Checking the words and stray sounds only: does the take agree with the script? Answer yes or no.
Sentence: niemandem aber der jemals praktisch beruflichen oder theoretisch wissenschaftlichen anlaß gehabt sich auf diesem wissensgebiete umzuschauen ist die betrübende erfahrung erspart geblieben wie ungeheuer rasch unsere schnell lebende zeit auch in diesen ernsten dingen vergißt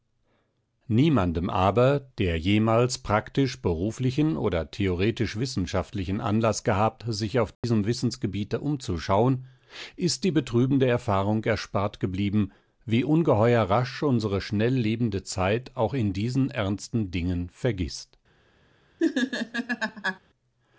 no